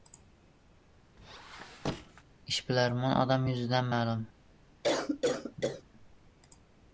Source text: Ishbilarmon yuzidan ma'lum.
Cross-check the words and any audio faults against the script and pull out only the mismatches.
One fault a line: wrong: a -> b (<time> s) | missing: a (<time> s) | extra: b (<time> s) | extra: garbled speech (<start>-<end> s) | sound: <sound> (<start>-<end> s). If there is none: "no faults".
sound: squeak (1.2-2.2 s)
extra: odam (3.2 s)
sound: cough (4.8-5.8 s)